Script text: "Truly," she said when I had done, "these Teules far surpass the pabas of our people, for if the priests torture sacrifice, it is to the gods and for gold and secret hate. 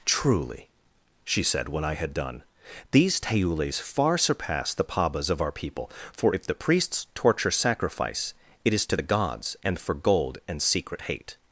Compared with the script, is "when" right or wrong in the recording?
right